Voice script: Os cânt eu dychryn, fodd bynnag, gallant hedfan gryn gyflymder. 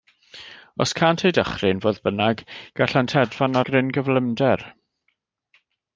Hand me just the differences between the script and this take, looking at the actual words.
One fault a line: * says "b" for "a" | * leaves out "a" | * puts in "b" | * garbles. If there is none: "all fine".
all fine